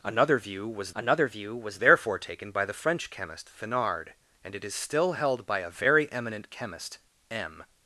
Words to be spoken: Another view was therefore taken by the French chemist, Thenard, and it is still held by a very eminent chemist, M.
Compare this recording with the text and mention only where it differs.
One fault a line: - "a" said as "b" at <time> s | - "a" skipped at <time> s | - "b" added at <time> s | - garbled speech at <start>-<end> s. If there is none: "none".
- "another view was" added at 0.9 s